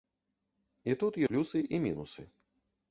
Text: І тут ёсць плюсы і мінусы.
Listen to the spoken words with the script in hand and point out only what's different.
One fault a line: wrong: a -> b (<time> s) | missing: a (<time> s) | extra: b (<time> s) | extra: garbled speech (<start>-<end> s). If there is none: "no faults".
missing: ёсць (1.2 s)